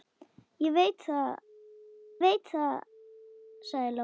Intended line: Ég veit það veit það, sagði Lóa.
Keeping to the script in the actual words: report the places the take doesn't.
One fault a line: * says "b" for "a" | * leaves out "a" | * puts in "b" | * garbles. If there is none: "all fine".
all fine